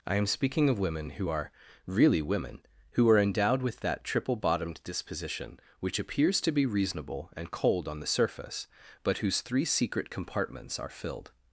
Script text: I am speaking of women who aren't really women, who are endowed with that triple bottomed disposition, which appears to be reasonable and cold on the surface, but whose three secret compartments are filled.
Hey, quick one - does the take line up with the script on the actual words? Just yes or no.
no